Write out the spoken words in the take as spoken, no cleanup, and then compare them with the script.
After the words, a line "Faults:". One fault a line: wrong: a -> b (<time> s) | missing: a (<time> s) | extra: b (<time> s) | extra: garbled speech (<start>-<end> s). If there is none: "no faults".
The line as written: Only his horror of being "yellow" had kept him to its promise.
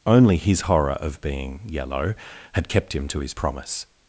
Only his horror of being "yellow" had kept him to his promise.
Faults:
wrong: its -> his (3.2 s)